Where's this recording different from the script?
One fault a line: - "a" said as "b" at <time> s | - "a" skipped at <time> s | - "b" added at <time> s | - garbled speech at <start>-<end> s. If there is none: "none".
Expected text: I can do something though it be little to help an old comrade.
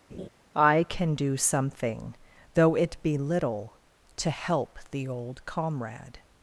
- "an" said as "the" at 4.9 s